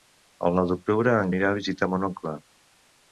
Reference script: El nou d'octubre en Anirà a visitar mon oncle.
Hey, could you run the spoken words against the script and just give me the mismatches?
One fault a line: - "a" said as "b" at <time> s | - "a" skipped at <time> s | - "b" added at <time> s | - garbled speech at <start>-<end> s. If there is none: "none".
none